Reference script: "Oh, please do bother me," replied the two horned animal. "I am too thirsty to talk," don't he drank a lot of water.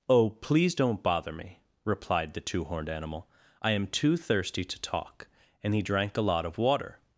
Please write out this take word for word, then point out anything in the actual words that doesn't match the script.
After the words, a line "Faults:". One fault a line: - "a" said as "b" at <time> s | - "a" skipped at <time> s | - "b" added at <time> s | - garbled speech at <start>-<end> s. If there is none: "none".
"Oh, please don't bother me," replied the two horned animal. "I am too thirsty to talk," and he drank a lot of water.
Faults:
- "do" said as "don't" at 0.8 s
- "don't" said as "and" at 5.6 s